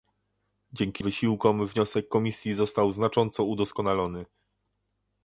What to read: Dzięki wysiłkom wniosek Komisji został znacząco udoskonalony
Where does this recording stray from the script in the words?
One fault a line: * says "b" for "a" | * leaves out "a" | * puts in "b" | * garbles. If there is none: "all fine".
all fine